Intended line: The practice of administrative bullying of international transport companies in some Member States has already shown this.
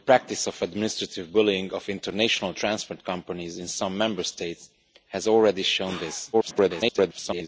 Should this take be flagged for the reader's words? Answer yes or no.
yes